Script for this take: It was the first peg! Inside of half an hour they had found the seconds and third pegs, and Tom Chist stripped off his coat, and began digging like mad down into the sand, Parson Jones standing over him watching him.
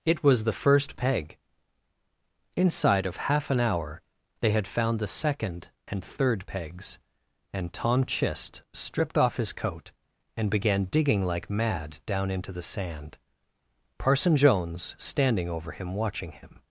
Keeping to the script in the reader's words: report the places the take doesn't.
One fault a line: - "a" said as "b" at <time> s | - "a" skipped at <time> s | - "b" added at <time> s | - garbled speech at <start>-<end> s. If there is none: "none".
- "seconds" said as "second" at 5.1 s